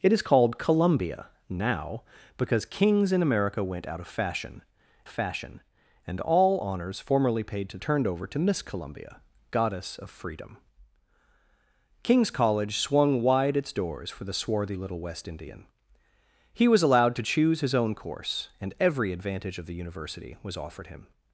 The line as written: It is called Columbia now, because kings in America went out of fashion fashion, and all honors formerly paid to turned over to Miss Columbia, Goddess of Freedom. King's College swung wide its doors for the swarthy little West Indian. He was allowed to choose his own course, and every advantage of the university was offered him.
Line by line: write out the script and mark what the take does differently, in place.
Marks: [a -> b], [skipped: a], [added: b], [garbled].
It is called Columbia now, because kings in America went out of fashion fashion, and all honors formerly paid to turned over to Miss Columbia, Goddess of Freedom. King's College swung wide its doors for the swarthy little West Indian. He was allowed to choose his own course, and every advantage of the university was offered him.